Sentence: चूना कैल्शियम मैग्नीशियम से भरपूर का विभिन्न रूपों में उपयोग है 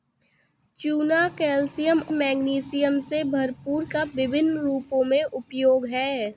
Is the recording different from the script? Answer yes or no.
no